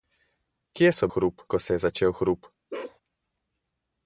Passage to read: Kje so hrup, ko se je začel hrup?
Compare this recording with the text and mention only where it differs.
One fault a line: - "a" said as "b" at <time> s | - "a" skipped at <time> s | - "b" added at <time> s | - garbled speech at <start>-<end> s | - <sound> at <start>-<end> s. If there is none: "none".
- bark at 2.7-3.0 s